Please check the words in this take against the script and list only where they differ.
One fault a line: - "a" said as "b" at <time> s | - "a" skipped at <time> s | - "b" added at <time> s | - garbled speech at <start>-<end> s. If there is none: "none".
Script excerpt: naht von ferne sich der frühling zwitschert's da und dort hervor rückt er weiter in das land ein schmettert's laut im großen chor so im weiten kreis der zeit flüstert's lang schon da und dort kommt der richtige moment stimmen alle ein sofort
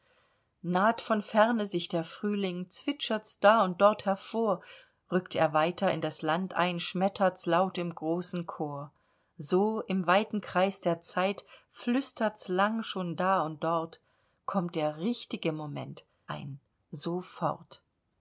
- "stimmen alle" skipped at 16.0 s